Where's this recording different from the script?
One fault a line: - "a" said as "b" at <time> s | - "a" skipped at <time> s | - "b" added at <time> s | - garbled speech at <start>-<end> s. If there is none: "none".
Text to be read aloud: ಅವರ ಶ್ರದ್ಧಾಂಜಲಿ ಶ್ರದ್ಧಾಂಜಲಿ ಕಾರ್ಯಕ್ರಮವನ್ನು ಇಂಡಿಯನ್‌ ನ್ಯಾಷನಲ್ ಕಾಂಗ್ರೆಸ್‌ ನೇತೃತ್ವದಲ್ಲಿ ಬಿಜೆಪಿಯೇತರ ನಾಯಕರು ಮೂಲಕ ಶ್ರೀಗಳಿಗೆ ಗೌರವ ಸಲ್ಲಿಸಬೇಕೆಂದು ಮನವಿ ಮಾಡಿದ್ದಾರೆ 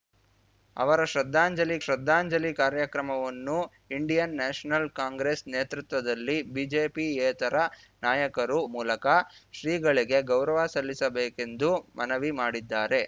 none